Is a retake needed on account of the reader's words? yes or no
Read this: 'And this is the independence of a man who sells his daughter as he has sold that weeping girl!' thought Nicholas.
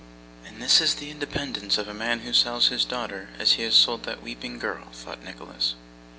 no